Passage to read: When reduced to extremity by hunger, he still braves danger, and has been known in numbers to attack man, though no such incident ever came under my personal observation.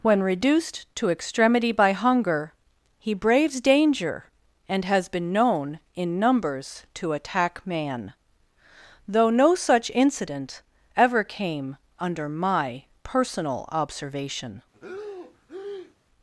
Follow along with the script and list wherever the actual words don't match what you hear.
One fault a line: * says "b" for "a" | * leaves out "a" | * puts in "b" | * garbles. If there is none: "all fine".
* leaves out "still"